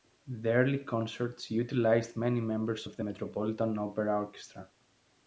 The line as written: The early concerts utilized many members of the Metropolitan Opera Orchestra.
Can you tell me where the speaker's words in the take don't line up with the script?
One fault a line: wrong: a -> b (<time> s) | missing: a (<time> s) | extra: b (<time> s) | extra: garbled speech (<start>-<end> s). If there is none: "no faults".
no faults